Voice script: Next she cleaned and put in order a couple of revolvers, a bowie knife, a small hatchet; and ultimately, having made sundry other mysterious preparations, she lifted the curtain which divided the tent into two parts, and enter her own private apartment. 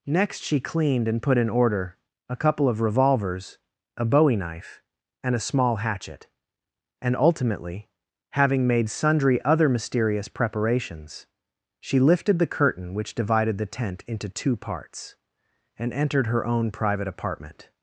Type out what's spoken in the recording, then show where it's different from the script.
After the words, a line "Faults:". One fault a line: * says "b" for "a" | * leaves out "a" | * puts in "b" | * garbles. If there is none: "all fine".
Next she cleaned and put in order a couple of revolvers, a bowie knife, and a small hatchet; and ultimately, having made sundry other mysterious preparations, she lifted the curtain which divided the tent into two parts, and entered her own private apartment.
Faults:
* puts in "and"
* says "entered" for "enter"